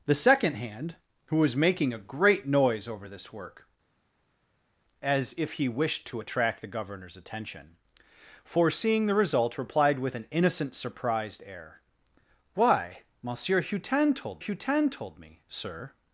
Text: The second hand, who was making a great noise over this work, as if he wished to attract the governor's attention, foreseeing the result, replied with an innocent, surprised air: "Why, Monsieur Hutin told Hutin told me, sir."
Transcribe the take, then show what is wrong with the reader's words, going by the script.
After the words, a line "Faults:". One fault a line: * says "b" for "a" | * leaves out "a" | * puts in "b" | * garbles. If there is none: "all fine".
The second hand, who was making a great noise over this work, as if he wished to attract the governor's attention, foreseeing the result, replied with an innocent, surprised air: "Why, Monsieur Hutin told Hutin told me, sir."
Faults:
all fine